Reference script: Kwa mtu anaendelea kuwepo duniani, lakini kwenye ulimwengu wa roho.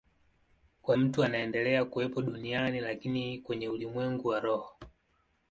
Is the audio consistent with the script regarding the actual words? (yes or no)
yes